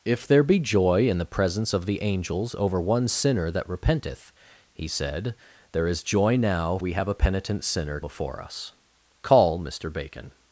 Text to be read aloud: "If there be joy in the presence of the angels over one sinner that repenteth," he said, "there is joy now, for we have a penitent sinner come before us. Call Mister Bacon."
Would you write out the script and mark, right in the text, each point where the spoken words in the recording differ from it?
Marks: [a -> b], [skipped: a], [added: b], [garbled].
"If there be joy in the presence of the angels over one sinner that repenteth," he said, "there is joy now, [skipped: for] we have a penitent sinner [skipped: come] before us. Call Mister Bacon."